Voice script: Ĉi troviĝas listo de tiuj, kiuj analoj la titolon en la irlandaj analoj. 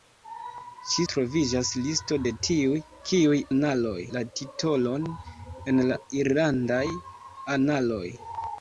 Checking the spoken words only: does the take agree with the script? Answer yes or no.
yes